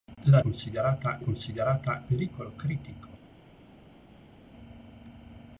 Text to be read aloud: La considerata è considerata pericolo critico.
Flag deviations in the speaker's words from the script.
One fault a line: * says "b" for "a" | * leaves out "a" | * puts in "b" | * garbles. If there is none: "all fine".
all fine